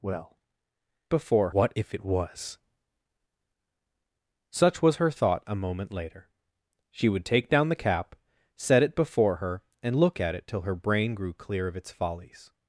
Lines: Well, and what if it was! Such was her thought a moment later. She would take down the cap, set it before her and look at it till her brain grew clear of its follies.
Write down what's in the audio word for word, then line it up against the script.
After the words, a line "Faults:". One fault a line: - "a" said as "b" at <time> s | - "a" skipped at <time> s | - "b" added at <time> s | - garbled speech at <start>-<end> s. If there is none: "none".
Well, before what if it was! Such was her thought a moment later. She would take down the cap, set it before her and look at it till her brain grew clear of its follies.
Faults:
- "and" said as "before" at 1.1 s